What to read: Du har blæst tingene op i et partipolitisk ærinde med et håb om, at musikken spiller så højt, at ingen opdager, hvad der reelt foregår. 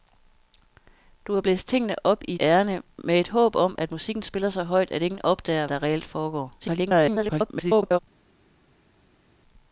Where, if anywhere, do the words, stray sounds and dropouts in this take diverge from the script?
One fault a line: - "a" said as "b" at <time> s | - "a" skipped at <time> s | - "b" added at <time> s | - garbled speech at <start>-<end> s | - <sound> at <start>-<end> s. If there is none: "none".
- "et partipolitisk" skipped at 2.4 s
- "hvad" skipped at 5.7 s
- garbled speech at 6.6-8.0 s